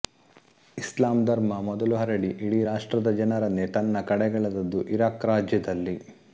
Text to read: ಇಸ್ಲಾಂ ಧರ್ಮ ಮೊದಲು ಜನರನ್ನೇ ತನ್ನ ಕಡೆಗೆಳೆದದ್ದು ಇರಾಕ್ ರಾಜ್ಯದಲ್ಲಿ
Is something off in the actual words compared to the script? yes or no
yes